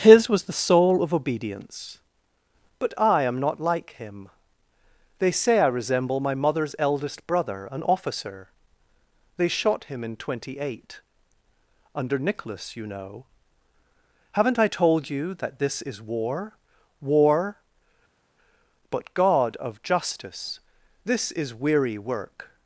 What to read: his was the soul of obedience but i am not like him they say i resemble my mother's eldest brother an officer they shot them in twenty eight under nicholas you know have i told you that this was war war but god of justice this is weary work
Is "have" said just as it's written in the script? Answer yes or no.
no